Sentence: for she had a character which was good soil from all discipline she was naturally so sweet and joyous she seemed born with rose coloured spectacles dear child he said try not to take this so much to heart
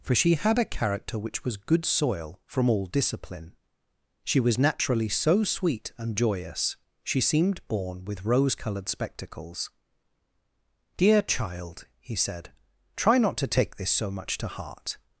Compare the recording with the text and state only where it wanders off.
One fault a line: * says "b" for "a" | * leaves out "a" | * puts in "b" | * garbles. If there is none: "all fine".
all fine